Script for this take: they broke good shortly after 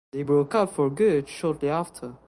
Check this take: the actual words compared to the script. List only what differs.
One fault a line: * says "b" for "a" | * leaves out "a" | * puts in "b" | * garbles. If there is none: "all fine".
* puts in "up for"